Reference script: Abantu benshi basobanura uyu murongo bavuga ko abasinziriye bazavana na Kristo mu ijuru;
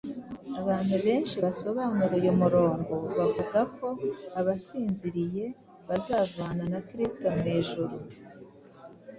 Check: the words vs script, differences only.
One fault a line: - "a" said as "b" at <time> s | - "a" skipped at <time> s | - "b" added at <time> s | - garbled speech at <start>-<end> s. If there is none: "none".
none